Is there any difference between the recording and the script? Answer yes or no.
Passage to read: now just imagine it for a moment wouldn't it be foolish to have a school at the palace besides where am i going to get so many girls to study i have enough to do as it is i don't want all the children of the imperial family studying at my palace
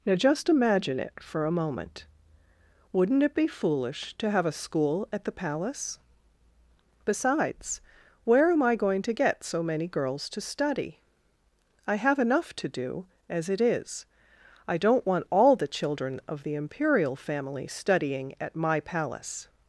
no